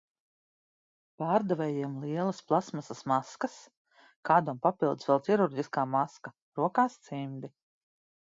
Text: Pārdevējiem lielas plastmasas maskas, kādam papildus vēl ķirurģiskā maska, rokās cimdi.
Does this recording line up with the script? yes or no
yes